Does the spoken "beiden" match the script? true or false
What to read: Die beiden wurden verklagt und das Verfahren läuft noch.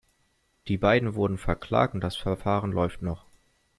true